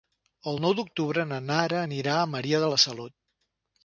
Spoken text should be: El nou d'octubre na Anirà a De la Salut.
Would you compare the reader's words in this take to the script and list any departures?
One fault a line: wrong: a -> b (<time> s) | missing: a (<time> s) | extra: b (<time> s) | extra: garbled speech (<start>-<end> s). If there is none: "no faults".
extra: Nara (1.5 s)
extra: Maria (2.4 s)